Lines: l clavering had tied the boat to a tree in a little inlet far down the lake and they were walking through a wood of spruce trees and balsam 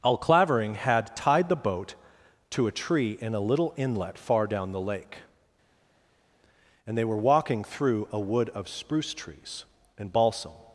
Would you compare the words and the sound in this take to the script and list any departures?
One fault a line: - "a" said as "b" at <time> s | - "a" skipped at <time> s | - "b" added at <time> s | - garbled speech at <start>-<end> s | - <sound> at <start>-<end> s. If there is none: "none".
- "l" said as "al" at 0.0 s